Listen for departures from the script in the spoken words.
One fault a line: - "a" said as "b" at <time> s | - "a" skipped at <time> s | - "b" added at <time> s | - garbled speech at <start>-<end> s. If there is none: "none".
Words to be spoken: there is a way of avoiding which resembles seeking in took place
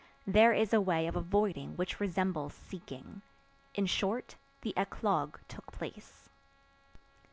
- "short the eclogue" added at 3.9 s